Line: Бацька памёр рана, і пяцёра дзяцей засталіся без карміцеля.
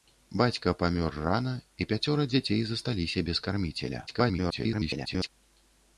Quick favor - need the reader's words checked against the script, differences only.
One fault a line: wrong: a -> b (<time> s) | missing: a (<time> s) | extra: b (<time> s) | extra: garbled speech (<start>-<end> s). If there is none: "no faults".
extra: garbled speech (4.1-5.3 s)